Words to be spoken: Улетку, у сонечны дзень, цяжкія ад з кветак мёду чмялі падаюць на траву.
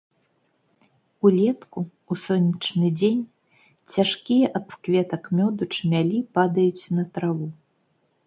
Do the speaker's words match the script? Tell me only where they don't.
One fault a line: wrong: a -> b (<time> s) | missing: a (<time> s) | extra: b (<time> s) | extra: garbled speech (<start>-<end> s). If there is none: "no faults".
no faults